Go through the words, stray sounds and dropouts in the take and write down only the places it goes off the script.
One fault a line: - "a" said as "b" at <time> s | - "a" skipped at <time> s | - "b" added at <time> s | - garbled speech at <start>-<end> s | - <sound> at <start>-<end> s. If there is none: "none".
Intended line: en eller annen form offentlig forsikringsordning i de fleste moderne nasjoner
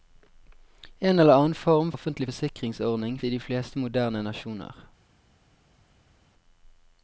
none